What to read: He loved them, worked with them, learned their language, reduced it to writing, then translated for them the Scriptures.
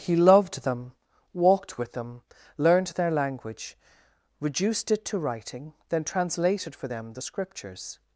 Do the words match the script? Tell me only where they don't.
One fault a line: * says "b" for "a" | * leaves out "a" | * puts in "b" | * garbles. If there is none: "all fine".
* says "walked" for "worked"